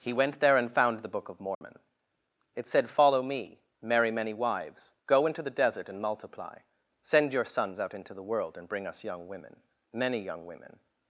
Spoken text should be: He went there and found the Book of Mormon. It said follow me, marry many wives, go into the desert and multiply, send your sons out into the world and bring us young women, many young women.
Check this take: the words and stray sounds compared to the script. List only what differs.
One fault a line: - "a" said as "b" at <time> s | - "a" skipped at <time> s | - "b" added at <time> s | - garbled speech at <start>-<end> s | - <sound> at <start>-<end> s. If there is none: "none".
- dropout at 1.5-1.6 s